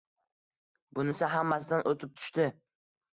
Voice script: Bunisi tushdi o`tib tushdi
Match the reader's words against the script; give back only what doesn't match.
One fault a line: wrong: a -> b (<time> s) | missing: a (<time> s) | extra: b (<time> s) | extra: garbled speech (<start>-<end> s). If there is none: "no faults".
wrong: tushdi -> hammasidan (1.3 s)